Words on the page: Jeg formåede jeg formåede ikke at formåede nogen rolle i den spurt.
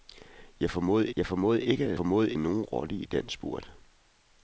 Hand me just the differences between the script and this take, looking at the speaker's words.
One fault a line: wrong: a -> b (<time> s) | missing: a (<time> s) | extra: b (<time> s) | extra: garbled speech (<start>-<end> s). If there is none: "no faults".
no faults